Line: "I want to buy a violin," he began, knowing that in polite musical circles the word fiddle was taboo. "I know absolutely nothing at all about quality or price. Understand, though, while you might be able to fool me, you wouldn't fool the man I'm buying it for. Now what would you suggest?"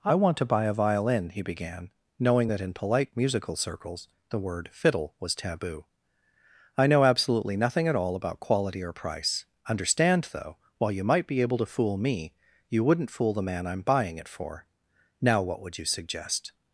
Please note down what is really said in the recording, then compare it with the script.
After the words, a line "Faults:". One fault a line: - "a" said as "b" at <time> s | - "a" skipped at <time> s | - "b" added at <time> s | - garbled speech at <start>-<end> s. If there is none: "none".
"I want to buy a violin," he began, knowing that in polite musical circles the word fiddle was taboo. "I know absolutely nothing at all about quality or price. Understand, though, while you might be able to fool me, you wouldn't fool the man I'm buying it for. Now what would you suggest?"
Faults:
none